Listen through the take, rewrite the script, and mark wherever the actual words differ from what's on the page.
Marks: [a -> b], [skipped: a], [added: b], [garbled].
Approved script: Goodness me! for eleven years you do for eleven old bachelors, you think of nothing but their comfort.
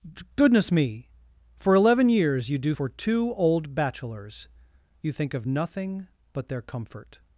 Goodness me! for eleven years you do for [eleven -> two] old bachelors, you think of nothing but their comfort.